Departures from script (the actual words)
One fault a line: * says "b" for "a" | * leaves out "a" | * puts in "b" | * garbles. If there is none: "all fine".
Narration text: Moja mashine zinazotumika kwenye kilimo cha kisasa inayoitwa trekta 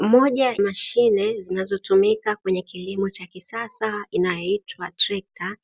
all fine